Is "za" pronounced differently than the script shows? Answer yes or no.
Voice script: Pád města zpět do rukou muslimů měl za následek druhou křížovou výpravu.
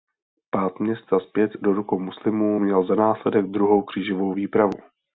no